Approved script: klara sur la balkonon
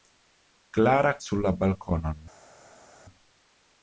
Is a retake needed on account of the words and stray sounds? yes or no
no